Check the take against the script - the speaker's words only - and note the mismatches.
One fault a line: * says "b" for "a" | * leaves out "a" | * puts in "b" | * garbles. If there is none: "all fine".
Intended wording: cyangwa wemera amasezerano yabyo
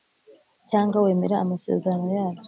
all fine